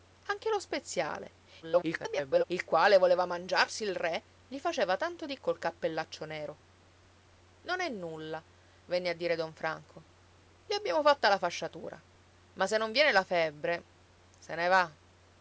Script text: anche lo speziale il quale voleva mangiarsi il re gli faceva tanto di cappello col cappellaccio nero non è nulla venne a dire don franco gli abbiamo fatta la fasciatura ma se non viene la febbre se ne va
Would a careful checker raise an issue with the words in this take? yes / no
yes